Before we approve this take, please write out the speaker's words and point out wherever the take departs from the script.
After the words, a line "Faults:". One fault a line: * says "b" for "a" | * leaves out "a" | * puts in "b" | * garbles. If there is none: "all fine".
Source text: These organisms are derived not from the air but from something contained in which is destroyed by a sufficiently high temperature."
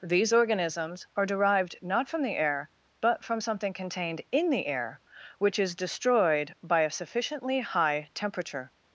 These organisms are derived not from the air but from something contained in the air, which is destroyed by a sufficiently high temperature."
Faults:
* puts in "the air"